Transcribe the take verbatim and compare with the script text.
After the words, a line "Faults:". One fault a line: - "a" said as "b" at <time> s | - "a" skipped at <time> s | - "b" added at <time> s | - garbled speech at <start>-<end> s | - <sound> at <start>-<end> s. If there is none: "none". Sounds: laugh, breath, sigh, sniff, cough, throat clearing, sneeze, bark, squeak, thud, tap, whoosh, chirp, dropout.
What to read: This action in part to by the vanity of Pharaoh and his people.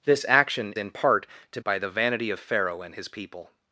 This action in part to by the vanity of Pharaoh and his people.
Faults:
none